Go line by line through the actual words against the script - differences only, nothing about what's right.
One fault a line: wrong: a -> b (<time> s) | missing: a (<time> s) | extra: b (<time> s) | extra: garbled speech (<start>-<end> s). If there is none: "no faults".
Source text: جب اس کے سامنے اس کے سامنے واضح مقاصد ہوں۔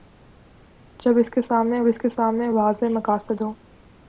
no faults